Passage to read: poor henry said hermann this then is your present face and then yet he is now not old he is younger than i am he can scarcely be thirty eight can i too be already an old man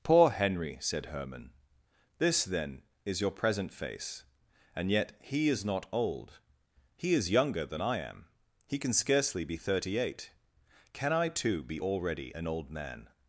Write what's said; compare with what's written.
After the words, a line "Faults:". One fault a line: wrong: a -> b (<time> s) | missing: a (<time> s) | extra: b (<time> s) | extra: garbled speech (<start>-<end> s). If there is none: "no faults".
poor henry said hermann this then is your present face and yet he is not old he is younger than i am he can scarcely be thirty eight can i too be already an old man
Faults:
missing: then (4.9 s)
missing: now (5.6 s)